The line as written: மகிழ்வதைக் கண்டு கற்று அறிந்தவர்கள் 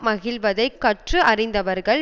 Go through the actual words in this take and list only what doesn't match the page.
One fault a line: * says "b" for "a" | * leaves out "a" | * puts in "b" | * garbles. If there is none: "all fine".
* leaves out "கண்டு"